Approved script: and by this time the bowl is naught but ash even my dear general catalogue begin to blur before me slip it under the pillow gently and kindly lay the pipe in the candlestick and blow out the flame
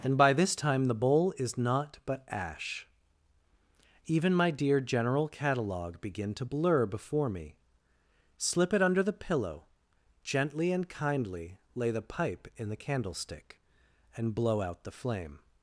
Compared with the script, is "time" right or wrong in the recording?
right